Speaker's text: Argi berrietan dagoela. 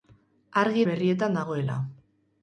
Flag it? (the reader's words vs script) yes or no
no